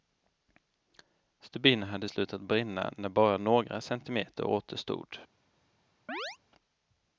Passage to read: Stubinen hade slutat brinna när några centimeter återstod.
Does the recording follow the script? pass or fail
fail